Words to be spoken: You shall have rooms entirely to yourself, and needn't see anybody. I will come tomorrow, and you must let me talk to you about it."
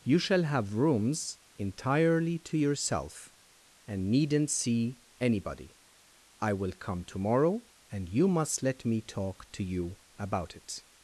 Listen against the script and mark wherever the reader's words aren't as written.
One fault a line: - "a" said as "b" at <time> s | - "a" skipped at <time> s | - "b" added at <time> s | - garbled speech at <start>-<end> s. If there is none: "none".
none